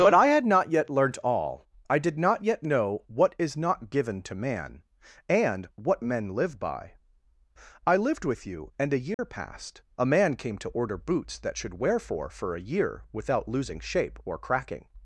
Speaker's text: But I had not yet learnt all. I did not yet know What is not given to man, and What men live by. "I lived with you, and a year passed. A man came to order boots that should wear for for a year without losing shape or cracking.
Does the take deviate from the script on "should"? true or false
false